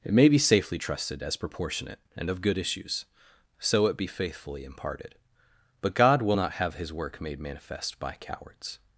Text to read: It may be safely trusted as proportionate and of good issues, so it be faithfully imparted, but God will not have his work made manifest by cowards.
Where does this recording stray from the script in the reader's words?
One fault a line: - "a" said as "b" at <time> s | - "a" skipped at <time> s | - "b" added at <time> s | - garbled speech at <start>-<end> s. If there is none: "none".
none